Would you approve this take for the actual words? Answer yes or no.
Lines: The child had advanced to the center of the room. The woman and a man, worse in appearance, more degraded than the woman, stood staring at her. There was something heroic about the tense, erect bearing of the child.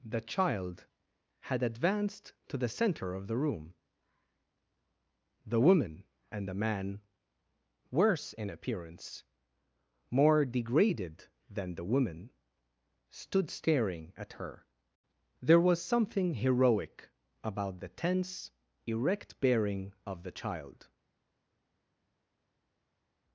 no